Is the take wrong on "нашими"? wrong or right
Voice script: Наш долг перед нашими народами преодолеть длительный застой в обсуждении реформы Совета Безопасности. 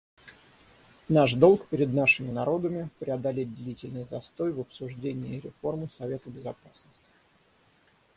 right